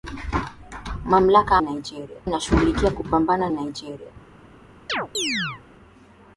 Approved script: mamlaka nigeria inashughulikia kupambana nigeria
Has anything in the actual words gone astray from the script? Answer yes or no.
no